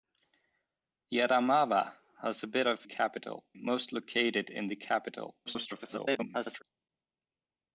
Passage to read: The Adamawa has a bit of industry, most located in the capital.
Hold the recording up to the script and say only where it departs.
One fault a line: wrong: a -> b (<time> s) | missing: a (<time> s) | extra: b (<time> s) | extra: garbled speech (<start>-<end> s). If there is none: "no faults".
wrong: industry -> capital (2.8 s)
extra: garbled speech (5.5-6.6 s)